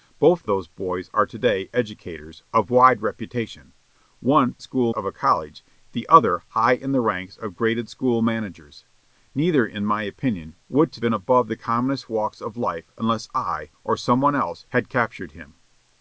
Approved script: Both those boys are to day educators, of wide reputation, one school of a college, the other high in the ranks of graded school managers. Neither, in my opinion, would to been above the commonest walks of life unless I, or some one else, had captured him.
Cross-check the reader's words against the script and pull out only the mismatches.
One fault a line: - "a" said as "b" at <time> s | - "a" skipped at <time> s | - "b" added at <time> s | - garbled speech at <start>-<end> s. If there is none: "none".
none